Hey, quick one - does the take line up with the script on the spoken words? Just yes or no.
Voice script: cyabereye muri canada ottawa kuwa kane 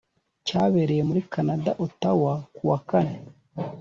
yes